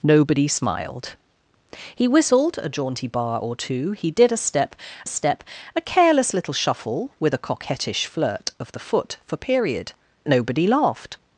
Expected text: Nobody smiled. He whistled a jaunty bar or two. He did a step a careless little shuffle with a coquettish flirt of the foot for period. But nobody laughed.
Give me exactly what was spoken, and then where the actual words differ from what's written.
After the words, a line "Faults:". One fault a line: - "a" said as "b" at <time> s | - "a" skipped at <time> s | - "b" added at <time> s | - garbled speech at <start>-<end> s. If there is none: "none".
Nobody smiled. He whistled a jaunty bar or two. He did a step step a careless little shuffle with a coquettish flirt of the foot for period. Nobody laughed.
Faults:
- "step" added at 5.1 s
- "But" skipped at 9.9 s